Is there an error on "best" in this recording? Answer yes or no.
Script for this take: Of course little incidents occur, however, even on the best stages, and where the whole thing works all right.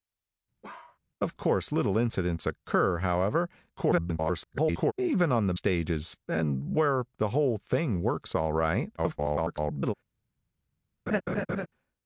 yes